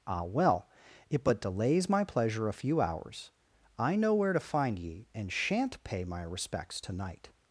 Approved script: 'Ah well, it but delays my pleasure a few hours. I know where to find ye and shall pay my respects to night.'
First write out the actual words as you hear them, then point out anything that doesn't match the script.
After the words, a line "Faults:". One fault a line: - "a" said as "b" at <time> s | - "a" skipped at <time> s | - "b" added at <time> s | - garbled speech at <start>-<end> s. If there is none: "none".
'Ah well, it but delays my pleasure a few hours. I know where to find ye and shan't pay my respects to night.'
Faults:
- "shall" said as "shan't" at 5.3 s